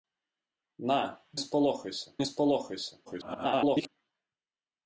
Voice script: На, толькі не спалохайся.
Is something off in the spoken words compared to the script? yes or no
yes